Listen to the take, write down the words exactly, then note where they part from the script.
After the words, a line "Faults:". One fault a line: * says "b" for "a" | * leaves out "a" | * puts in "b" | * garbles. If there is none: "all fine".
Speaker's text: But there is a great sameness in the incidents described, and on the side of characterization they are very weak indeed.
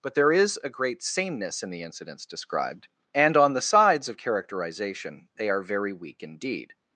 But there is a great sameness in the incidents described, and on the sides of characterization they are very weak indeed.
Faults:
* says "sides" for "side"